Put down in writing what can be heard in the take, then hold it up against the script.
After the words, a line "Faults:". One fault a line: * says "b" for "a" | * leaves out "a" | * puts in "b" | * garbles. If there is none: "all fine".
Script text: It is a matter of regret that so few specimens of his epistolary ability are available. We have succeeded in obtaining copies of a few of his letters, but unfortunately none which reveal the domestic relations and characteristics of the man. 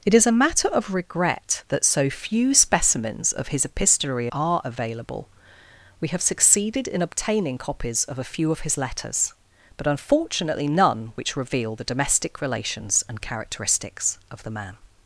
It is a matter of regret that so few specimens of his epistolary are available. We have succeeded in obtaining copies of a few of his letters, but unfortunately none which reveal the domestic relations and characteristics of the man.
Faults:
* leaves out "ability"